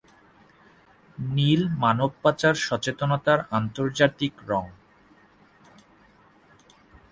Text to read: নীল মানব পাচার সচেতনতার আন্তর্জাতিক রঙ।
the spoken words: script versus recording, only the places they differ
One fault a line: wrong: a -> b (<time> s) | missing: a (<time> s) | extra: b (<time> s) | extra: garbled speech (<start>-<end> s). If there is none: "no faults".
no faults